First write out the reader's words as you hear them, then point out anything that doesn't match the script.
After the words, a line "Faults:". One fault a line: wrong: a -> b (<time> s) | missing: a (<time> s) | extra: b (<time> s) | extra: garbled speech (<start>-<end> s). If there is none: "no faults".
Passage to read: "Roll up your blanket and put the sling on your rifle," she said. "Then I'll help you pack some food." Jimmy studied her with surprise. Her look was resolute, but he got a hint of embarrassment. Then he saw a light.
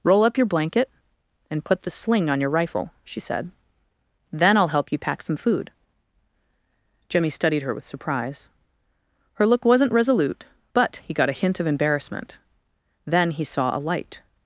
"Roll up your blanket and put the sling on your rifle," she said. "Then I'll help you pack some food." Jimmy studied her with surprise. Her look wasn't resolute, but he got a hint of embarrassment. Then he saw a light.
Faults:
wrong: was -> wasn't (9.7 s)